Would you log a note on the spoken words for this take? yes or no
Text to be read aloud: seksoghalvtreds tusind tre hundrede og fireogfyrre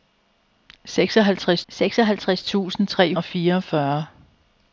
yes